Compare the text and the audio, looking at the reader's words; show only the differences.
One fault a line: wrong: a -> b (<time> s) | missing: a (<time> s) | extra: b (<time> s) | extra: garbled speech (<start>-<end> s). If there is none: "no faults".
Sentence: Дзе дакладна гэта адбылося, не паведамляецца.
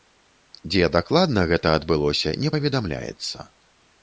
no faults